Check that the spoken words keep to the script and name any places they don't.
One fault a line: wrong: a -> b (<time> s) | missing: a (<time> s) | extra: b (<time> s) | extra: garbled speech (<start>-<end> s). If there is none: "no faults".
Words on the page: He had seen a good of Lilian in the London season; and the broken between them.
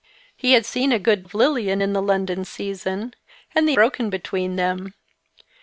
no faults